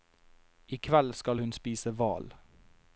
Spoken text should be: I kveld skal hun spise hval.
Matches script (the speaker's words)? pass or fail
pass